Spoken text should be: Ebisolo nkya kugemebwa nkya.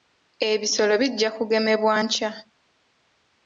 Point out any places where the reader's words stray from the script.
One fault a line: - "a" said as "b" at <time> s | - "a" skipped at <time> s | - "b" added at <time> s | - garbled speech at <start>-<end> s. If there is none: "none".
- "nkya" said as "bijja" at 1.0 s